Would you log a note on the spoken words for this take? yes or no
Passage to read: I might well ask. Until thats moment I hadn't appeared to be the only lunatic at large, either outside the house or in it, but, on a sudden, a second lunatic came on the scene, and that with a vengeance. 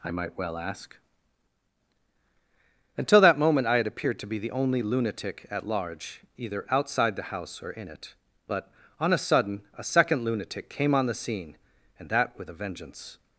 yes